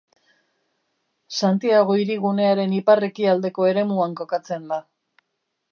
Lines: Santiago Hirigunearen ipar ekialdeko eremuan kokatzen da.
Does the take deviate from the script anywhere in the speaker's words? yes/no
no